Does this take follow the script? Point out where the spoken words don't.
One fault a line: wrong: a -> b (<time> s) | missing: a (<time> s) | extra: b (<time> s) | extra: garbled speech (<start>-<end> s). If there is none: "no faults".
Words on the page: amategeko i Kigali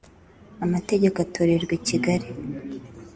extra: atorerwa (1.2 s)